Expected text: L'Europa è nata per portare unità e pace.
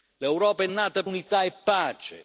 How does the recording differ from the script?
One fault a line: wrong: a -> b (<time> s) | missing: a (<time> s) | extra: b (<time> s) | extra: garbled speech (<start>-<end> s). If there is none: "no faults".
missing: per portare (1.0 s)